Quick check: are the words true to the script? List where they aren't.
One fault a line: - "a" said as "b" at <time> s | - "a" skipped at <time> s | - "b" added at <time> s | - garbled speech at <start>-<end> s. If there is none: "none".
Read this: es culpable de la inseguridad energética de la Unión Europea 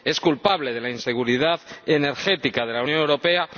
none